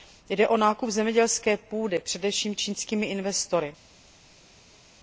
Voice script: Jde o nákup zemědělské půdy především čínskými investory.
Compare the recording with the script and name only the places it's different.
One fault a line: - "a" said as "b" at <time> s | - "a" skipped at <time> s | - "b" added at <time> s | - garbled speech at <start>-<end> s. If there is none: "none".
none